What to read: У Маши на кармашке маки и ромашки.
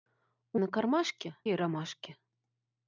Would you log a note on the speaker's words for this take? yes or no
yes